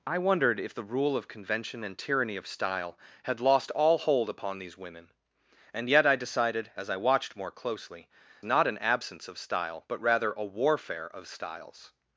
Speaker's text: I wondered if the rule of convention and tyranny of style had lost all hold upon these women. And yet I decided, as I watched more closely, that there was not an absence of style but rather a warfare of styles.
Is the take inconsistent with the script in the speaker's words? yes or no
yes